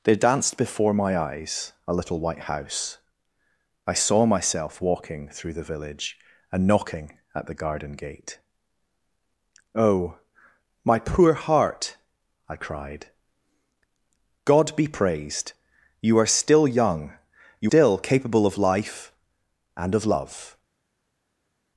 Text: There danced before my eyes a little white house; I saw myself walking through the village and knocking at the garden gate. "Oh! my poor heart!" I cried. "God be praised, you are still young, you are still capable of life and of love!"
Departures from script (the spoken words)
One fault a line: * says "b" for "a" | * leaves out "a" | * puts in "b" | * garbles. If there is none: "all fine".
* leaves out "are"